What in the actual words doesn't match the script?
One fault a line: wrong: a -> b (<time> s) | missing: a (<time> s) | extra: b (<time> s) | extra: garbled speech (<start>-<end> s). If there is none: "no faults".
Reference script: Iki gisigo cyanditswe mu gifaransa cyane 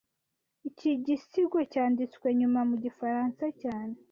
extra: nyuma (2.4 s)